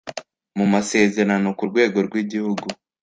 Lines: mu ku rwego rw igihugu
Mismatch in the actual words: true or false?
true